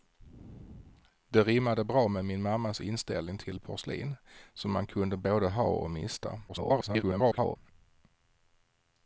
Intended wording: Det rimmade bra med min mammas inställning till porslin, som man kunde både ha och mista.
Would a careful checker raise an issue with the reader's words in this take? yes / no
yes